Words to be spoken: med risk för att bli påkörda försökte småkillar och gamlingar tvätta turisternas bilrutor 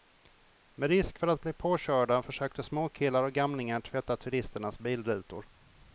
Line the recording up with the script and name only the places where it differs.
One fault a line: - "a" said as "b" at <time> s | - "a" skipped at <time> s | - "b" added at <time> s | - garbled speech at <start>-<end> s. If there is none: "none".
none